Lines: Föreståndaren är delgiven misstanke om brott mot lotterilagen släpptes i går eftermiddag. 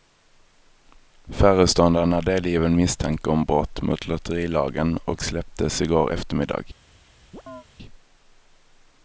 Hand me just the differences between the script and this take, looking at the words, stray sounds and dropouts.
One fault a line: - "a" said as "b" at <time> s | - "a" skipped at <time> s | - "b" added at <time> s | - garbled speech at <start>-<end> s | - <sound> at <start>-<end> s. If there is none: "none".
- "och" added at 5.0 s
- chirp at 7.3-7.7 s